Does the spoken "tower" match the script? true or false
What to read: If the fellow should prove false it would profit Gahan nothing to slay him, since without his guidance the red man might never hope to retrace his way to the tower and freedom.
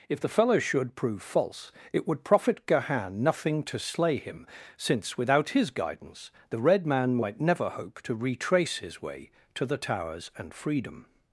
false